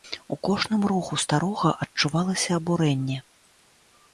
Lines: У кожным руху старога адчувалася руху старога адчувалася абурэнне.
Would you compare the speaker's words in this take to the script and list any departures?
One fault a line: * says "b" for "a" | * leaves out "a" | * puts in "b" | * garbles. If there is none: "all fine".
* leaves out "руху старога адчувалася"